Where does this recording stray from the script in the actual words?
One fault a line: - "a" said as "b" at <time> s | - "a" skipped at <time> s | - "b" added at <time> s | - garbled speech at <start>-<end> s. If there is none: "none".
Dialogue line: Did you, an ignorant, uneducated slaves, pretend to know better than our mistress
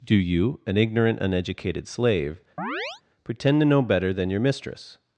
- "Did" said as "Do" at 0.0 s
- "slaves" said as "slave" at 1.9 s
- "our" said as "your" at 4.3 s